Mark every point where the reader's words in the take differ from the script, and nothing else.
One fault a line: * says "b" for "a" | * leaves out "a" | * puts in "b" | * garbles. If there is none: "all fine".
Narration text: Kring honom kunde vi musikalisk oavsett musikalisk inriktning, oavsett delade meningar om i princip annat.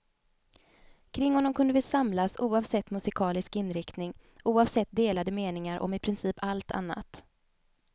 * says "samlas" for "musikalisk"
* puts in "allt"